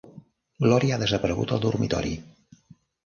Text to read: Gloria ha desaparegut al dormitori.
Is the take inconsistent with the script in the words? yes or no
no